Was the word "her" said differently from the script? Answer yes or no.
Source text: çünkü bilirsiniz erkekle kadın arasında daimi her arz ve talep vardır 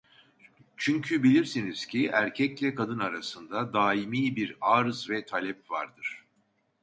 yes